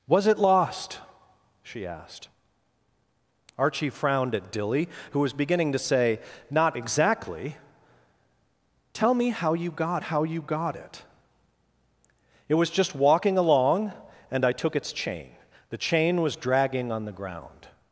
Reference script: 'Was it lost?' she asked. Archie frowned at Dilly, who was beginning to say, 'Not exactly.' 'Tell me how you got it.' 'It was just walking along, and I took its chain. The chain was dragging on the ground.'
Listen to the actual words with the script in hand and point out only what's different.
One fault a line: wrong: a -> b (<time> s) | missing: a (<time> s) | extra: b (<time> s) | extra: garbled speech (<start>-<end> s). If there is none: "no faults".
extra: how you got (10.0 s)